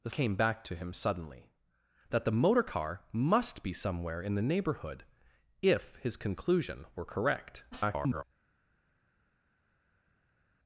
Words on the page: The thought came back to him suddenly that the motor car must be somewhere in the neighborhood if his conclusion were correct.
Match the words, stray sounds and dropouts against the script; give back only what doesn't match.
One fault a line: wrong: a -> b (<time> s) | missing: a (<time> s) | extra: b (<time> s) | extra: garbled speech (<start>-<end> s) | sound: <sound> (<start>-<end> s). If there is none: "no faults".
missing: thought (0.1 s)
extra: garbled speech (7.7-8.2 s)